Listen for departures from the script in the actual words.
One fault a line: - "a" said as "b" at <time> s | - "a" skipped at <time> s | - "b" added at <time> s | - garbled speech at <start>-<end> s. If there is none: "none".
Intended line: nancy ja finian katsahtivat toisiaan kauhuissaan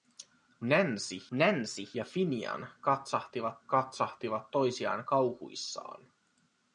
- "nancy" added at 1.3 s
- "katsahtivat" added at 3.7 s